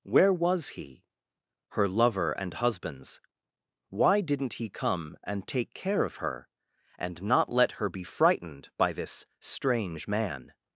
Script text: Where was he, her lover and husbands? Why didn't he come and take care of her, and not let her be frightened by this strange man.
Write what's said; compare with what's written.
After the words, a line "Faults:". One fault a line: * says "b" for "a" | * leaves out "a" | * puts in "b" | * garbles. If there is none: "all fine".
Where was he, her lover and husbands? Why didn't he come and take care of her, and not let her be frightened by this strange man.
Faults:
all fine